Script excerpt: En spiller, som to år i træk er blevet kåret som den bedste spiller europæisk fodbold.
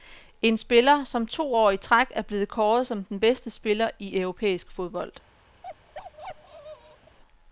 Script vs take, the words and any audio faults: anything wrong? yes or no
yes